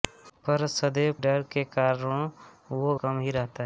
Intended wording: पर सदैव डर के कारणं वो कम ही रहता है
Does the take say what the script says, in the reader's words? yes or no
yes